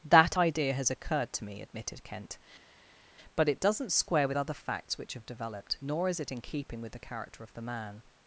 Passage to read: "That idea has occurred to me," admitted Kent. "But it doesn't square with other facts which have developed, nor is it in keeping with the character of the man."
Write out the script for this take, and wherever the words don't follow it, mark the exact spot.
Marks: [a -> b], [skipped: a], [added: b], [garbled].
"That idea has occurred to me," admitted Kent. "But it doesn't square with other facts which have developed, nor is it in keeping with the character of the man."